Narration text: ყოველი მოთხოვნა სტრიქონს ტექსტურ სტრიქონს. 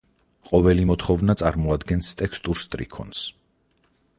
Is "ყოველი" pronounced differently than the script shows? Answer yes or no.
no